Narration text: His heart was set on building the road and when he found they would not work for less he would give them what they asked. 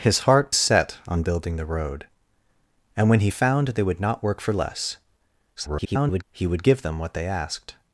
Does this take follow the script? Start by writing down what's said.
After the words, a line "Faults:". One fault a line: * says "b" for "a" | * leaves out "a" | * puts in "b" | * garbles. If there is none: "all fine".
His heart set on building the road and when he found they would not work for less [garbled] he would give them what they asked.
Faults:
* leaves out "was"
* garbles